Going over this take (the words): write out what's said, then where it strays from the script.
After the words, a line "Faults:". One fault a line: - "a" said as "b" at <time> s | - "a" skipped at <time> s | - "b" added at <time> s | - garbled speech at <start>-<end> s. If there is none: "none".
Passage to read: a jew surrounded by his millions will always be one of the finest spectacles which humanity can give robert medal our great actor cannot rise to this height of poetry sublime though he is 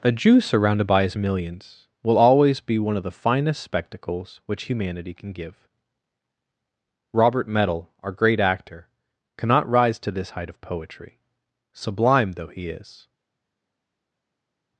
a jew surrounded by his millions will always be one of the finest spectacles which humanity can give robert medal our great actor cannot rise to this height of poetry sublime though he is
Faults:
none